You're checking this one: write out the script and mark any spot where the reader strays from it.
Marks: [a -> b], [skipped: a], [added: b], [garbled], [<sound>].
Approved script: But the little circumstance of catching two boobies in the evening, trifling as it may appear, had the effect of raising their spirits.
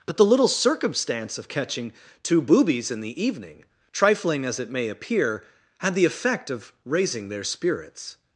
But the little circumstance of catching two boobies in the evening, trifling as it may appear, had the effect of raising their spirits.